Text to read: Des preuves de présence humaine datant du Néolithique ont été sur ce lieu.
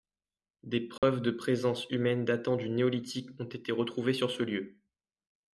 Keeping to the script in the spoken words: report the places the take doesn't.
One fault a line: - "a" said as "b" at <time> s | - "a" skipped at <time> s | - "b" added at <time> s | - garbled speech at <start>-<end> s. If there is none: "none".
- "retrouvées" added at 3.7 s